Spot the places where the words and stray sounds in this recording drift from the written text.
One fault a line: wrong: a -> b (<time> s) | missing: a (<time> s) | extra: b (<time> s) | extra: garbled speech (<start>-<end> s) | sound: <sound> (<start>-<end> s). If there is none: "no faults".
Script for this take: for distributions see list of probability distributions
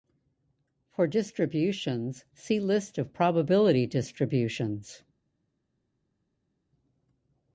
no faults